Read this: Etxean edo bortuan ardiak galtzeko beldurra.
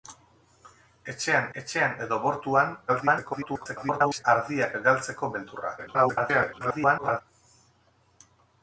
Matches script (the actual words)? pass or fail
fail